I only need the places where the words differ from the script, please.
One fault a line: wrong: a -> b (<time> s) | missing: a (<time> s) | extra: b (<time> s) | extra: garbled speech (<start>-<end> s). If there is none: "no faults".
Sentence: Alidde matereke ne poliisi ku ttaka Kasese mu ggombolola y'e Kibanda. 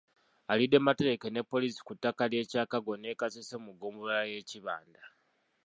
extra: ly'e Kyakago ne (2.3 s)